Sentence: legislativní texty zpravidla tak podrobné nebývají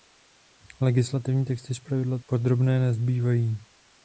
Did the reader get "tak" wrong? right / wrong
wrong